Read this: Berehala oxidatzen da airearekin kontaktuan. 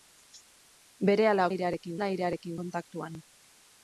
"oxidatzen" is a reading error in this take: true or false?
true